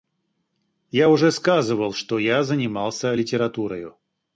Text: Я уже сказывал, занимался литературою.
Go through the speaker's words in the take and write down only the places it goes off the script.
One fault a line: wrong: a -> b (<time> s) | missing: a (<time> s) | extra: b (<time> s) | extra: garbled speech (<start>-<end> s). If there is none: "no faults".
extra: что я (1.9 s)